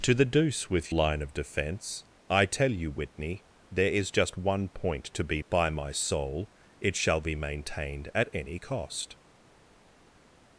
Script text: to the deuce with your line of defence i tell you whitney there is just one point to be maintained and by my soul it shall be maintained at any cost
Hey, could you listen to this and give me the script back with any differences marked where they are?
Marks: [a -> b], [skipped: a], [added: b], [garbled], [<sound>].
to the deuce with [skipped: your] line of defence i tell you whitney there is just one point to be [skipped: maintained and] by my soul it shall be maintained at any cost